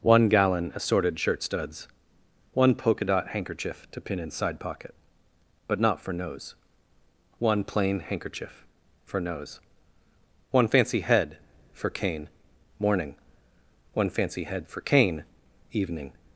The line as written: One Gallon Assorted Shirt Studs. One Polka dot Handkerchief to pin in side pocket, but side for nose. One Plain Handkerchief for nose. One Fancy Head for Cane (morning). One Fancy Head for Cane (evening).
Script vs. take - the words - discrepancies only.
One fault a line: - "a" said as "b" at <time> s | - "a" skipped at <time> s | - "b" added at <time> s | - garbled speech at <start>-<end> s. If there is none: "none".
- "side" said as "not" at 5.8 s